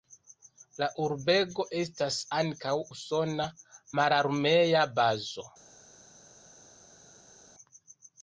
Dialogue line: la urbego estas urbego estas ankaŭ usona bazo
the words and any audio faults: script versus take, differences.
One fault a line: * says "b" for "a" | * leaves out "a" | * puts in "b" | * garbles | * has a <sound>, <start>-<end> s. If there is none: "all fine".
* leaves out "urbego estas"
* puts in "mararmea"